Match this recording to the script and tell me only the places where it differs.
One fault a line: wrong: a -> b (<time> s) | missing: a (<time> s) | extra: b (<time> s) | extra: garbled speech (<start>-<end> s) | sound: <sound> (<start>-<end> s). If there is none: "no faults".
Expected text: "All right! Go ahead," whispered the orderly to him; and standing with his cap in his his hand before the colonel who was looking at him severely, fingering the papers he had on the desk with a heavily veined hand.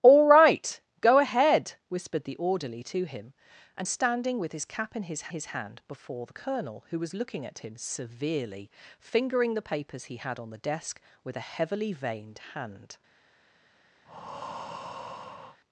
sound: breath (14.0-15.6 s)